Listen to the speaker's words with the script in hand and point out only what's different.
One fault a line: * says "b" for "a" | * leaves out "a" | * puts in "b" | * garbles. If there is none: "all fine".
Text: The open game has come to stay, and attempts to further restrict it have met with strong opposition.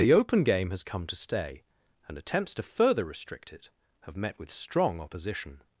all fine